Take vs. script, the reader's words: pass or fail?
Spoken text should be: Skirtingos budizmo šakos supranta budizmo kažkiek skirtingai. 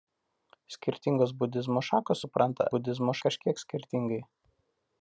pass